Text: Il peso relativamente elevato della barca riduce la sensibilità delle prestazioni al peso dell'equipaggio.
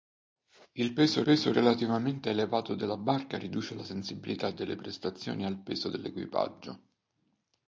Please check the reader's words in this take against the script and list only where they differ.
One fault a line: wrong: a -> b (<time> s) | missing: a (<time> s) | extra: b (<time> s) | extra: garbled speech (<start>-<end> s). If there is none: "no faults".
extra: peso (1.2 s)